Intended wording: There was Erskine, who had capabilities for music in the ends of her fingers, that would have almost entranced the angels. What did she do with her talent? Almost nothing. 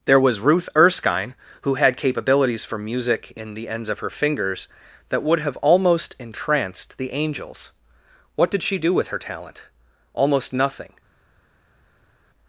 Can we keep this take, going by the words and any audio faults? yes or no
no